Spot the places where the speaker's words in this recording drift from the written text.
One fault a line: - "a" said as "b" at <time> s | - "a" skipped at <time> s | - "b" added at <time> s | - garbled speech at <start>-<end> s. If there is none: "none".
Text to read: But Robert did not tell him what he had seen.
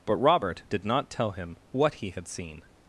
none